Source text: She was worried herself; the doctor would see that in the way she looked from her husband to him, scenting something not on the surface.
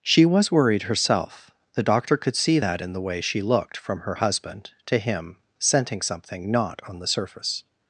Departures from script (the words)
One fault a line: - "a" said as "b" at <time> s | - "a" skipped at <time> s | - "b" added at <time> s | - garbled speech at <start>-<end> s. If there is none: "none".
- "would" said as "could" at 2.2 s